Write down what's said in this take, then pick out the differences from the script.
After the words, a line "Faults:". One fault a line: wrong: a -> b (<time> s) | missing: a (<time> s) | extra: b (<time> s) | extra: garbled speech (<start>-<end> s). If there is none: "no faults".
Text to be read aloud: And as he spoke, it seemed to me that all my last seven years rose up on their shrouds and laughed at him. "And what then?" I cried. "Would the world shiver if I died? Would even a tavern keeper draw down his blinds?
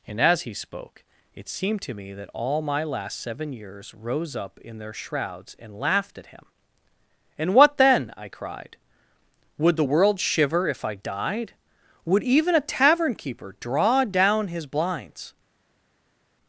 And as he spoke, it seemed to me that all my last seven years rose up in their shrouds and laughed at him. "And what then?" I cried. "Would the world shiver if I died? Would even a tavern keeper draw down his blinds?
Faults:
wrong: on -> in (4.6 s)